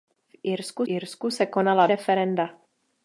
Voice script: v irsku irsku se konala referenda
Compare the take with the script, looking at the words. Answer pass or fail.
pass